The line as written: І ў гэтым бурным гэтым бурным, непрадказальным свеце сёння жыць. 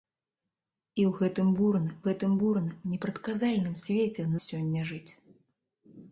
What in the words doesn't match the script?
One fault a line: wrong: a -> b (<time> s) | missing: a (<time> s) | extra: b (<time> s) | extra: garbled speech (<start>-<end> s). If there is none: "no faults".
no faults